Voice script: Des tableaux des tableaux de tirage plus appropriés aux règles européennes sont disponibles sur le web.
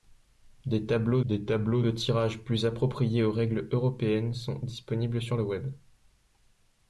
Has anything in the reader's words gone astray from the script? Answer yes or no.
no